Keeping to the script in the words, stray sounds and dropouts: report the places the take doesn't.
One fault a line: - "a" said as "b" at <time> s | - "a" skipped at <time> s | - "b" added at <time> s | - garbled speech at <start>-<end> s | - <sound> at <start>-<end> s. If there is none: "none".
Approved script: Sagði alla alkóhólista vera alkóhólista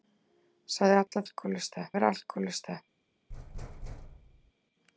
- dropout at 1.1-1.1 s
- thud at 3.3-4.5 s